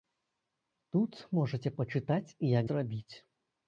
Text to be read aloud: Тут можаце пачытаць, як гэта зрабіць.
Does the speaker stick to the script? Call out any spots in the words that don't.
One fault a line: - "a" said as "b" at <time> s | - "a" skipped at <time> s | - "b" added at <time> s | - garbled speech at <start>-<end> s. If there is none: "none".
- "гэта" skipped at 2.6 s